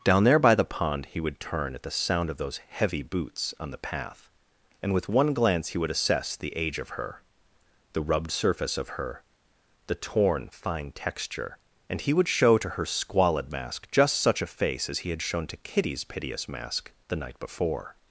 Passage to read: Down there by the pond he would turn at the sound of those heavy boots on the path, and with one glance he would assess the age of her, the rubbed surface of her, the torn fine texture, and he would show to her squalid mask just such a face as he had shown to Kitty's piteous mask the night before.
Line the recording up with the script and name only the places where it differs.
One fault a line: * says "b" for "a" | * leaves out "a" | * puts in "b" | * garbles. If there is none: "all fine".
all fine